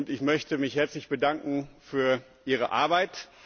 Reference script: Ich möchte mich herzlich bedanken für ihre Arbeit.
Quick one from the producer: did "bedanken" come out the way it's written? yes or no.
yes